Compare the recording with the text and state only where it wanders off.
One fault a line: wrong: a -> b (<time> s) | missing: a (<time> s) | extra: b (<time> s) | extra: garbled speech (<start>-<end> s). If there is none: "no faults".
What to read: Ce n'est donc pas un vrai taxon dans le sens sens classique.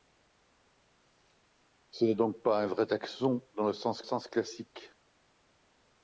no faults